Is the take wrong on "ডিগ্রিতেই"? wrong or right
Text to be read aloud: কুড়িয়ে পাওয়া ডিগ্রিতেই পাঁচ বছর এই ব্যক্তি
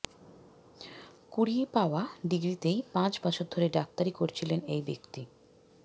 right